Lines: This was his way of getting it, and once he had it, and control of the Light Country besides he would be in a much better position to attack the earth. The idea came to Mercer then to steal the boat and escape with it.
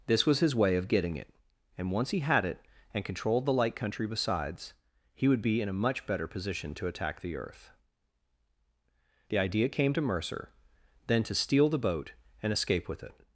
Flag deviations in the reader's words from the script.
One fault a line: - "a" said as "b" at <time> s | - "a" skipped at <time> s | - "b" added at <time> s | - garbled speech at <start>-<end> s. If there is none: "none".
- "control of" said as "controlled" at 3.0 s